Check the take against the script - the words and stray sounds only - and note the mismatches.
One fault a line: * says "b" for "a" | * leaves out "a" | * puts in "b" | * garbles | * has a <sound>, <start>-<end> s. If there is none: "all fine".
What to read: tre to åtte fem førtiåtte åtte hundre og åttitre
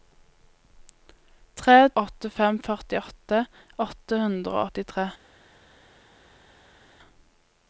* leaves out "to"